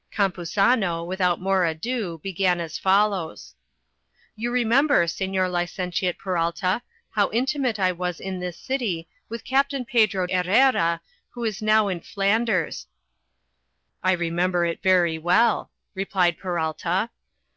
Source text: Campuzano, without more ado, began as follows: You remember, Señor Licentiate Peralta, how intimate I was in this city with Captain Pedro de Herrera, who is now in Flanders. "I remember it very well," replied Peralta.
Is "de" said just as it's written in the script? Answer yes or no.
no